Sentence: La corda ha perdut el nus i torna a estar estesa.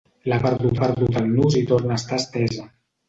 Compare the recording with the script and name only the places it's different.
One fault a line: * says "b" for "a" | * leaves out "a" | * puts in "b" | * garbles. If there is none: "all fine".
* says "perdut" for "corda"